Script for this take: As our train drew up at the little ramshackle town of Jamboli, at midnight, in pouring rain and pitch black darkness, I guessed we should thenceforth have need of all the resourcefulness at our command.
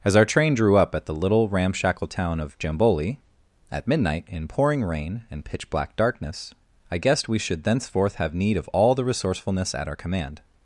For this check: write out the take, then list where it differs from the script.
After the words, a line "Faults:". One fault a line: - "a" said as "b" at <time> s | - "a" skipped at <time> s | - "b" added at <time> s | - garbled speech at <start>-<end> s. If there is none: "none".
As our train drew up at the little ramshackle town of Jamboli, at midnight, in pouring rain and pitch black darkness, I guessed we should thenceforth have need of all the resourcefulness at our command.
Faults:
none